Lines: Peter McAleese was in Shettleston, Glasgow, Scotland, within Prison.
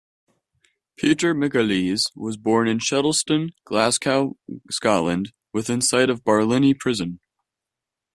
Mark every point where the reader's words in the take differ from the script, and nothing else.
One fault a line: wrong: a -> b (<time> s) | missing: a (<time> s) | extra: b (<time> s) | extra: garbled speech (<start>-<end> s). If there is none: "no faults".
extra: born (2.4 s)
extra: sight of Barlinnie (5.8 s)